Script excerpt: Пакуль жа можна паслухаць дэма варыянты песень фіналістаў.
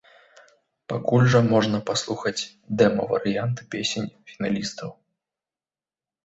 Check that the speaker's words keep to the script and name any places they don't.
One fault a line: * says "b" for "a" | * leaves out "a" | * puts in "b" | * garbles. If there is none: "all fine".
all fine